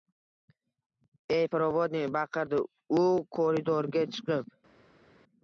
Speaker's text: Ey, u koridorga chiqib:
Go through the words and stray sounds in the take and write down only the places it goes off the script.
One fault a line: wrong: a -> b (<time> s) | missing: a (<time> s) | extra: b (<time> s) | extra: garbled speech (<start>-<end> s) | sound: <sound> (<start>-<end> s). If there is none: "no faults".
extra: provodnik baqirdi (1.6 s)